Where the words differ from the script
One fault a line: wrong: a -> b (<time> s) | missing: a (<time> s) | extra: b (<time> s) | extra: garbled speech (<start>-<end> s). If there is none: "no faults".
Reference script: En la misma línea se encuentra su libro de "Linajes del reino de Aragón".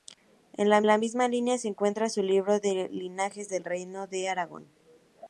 extra: la (0.9 s)